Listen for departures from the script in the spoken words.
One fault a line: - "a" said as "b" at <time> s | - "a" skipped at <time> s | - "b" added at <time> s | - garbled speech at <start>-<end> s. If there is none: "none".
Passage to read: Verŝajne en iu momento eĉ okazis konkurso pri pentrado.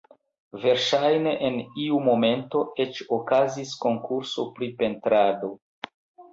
none